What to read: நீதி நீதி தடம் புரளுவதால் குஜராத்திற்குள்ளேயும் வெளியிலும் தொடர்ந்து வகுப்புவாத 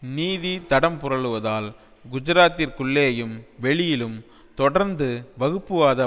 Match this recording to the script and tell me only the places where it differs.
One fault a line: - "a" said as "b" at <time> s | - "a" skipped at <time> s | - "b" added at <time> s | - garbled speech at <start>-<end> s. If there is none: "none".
- "நீதி" skipped at 0.5 s